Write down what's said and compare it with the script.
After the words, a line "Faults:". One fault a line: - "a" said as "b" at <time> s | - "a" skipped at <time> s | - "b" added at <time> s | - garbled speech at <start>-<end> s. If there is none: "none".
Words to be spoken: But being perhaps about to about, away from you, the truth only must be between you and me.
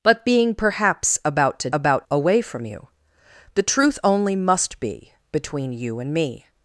But being perhaps about to about, away from you, the truth only must be between you and me.
Faults:
none